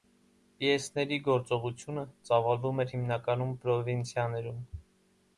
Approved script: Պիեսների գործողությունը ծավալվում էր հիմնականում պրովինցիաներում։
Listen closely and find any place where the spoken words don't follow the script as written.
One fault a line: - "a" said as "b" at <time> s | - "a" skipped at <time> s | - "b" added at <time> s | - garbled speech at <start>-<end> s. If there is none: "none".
none